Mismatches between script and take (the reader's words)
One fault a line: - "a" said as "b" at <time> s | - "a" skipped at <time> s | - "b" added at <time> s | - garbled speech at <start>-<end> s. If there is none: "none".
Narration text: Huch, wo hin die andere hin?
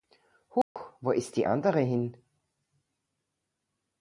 - "hin" said as "ist" at 1.1 s